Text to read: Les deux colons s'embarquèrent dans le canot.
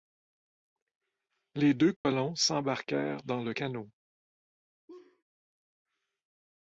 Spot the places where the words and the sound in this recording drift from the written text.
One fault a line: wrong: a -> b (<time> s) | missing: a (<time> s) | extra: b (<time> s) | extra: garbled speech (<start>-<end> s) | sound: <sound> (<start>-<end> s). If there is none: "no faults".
sound: dropout (2.0-2.0 s)
sound: laugh (4.9-5.2 s)